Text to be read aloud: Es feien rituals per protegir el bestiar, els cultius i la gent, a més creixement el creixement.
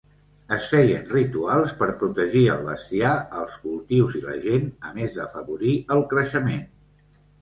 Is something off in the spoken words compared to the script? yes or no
yes